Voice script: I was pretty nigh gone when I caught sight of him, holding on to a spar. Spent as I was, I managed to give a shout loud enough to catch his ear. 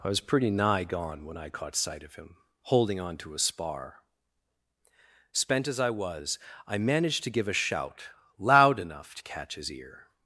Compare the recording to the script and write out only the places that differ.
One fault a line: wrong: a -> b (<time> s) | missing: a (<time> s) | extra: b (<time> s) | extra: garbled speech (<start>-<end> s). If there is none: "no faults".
no faults